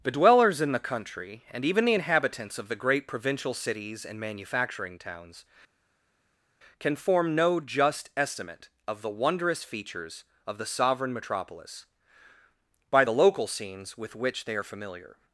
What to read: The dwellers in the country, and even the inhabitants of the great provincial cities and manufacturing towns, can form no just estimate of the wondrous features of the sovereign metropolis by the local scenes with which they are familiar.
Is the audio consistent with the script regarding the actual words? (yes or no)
yes